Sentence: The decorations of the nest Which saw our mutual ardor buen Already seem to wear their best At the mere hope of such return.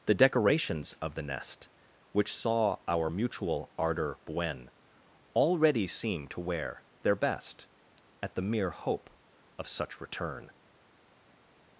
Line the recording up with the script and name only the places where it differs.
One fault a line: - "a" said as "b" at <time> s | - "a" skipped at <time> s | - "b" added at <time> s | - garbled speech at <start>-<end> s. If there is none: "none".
none